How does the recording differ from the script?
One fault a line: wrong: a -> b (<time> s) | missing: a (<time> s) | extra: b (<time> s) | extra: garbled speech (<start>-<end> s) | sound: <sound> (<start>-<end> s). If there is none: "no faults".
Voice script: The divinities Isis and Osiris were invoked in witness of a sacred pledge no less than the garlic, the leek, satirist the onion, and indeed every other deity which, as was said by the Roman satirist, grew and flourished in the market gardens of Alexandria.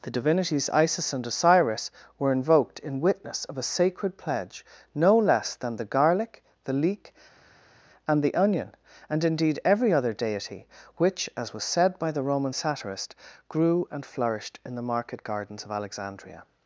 wrong: satirist -> and (8.1 s)